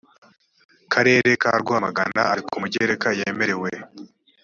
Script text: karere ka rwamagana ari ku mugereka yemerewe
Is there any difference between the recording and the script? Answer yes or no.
no